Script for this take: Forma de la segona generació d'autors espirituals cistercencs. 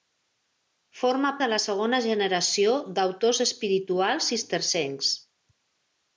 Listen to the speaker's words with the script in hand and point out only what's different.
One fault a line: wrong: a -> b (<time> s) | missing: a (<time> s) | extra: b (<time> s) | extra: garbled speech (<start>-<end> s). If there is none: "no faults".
no faults